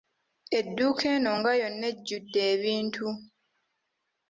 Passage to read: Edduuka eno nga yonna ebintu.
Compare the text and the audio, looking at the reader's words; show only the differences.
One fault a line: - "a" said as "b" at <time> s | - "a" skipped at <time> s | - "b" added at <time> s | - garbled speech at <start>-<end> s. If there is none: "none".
- "ejjudde" added at 1.9 s